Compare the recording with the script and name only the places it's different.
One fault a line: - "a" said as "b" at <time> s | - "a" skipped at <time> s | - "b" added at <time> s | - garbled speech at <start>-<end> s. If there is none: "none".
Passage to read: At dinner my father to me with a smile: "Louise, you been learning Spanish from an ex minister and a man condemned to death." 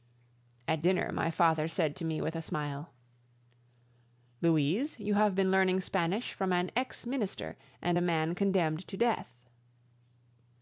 - "said" added at 1.7 s
- "have" added at 5.1 s